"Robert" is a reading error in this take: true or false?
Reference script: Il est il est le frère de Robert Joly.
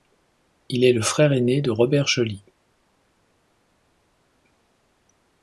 false